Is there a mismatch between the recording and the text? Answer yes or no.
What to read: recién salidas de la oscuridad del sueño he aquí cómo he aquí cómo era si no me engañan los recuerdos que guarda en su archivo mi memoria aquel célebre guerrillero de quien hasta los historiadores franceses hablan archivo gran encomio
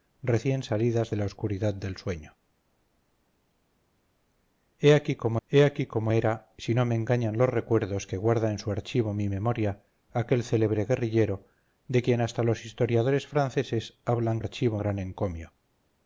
no